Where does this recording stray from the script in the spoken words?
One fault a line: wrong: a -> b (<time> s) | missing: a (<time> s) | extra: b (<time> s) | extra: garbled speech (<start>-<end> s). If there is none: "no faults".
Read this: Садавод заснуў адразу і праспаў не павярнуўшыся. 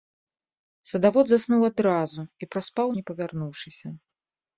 no faults